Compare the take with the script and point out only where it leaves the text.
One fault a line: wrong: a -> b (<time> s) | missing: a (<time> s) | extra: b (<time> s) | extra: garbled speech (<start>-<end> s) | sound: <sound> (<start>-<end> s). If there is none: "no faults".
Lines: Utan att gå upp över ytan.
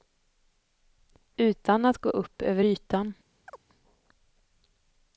sound: chirp (3.5-3.6 s)